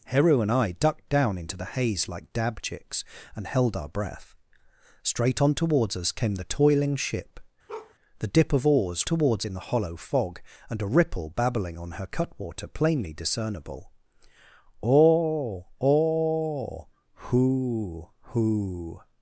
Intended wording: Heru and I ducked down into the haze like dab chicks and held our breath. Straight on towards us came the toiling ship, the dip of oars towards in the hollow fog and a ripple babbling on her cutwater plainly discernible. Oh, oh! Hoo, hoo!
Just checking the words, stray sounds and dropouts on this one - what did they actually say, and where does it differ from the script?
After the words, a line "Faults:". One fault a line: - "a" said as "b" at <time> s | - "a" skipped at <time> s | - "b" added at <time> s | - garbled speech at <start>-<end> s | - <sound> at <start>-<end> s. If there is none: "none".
Heru and I ducked down into the haze like dab chicks and held our breath. Straight on towards us came the toiling ship, the dip of oars towards in the hollow fog and a ripple babbling on her cutwater plainly discernible. Oh, oh! Hoo, hoo!
Faults:
- bark at 7.7-7.9 s